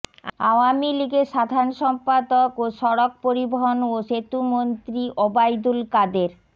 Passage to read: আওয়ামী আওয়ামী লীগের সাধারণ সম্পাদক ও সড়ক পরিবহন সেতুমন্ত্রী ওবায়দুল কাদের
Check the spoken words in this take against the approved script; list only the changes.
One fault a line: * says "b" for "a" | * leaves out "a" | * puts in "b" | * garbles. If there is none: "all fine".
* leaves out "আওয়ামী"
* puts in "ও"